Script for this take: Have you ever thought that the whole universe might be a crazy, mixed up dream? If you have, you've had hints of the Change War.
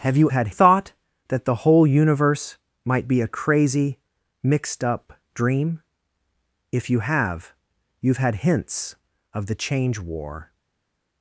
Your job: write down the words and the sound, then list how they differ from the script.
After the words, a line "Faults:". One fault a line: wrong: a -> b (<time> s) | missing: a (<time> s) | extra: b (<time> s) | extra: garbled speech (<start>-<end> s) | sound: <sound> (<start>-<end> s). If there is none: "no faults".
Have you had thought that the whole universe might be a crazy, mixed up dream? If you have, you've had hints of the Change War.
Faults:
wrong: ever -> had (0.3 s)